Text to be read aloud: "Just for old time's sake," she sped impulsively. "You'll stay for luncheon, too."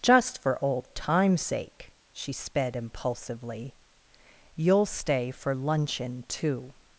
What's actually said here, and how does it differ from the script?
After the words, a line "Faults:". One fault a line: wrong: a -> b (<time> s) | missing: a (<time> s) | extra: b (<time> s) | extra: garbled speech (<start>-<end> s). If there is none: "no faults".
"Just for old time's sake," she sped impulsively. "You'll stay for luncheon, too."
Faults:
no faults